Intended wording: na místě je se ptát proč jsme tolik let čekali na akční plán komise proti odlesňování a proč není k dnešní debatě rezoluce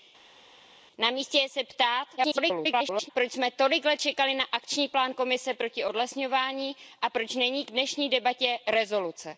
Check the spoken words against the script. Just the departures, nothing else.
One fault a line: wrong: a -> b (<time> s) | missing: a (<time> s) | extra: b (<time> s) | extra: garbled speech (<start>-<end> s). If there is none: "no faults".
extra: garbled speech (2.2-3.1 s)